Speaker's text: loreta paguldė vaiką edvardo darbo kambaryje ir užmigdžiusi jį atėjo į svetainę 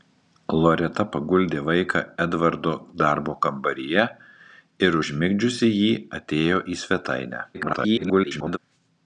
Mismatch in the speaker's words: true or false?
true